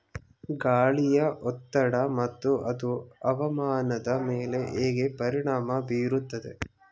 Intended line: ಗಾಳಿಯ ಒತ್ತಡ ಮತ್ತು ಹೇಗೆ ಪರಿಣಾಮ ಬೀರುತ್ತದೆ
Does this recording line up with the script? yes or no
no